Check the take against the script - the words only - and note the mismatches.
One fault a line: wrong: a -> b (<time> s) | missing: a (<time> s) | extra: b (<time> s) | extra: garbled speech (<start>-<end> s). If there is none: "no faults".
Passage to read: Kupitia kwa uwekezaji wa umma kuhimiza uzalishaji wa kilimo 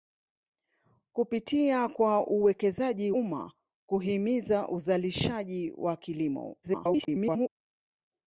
missing: wa (3.1 s)
extra: garbled speech (6.6-7.5 s)